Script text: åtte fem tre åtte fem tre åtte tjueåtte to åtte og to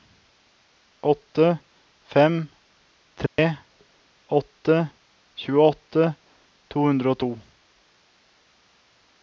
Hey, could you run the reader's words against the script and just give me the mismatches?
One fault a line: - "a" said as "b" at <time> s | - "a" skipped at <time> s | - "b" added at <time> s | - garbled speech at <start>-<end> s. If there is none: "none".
- "fem tre åtte" skipped at 4.8 s
- "åtte" said as "hundre" at 6.9 s